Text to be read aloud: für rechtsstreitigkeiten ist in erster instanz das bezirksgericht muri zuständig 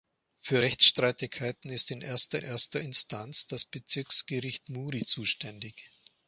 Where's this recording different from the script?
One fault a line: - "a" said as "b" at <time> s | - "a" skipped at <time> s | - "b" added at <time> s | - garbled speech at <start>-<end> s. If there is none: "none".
- "erster" added at 2.4 s